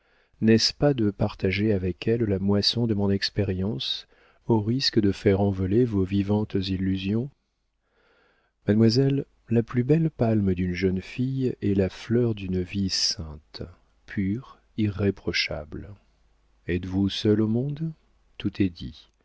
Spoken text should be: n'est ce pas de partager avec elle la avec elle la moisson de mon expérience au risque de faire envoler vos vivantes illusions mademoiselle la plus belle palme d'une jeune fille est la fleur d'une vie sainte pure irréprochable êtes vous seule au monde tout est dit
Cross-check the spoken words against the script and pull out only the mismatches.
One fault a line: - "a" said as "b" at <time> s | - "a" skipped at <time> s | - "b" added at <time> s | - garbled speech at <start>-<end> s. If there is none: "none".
- "avec elle la" skipped at 2.4 s